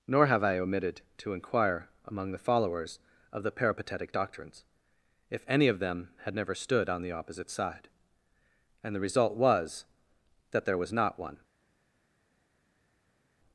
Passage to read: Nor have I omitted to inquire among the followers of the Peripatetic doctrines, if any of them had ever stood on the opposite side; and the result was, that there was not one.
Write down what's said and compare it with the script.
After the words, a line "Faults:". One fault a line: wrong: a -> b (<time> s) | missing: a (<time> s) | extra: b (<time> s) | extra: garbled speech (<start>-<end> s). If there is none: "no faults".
Nor have I omitted to inquire among the followers of the Peripatetic doctrines, if any of them had never stood on the opposite side; and the result was, that there was not one.
Faults:
wrong: ever -> never (6.3 s)